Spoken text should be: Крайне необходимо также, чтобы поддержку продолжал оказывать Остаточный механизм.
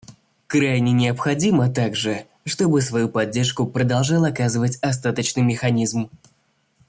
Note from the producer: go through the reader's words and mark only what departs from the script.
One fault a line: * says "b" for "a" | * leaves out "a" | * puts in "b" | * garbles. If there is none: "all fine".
* puts in "свою"